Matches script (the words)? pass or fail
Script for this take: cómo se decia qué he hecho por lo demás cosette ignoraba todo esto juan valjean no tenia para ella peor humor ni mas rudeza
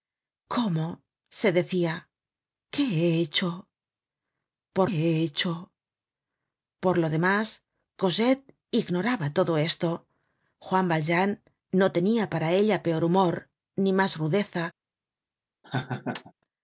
fail